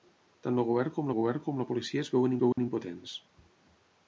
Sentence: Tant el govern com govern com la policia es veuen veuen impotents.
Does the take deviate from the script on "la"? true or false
false